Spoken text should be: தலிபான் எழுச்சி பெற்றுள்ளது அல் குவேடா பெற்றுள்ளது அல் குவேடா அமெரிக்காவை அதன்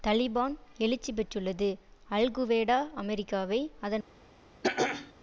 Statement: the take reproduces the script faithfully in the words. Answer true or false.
false